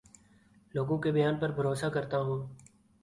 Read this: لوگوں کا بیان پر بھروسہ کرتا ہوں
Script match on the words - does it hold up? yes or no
no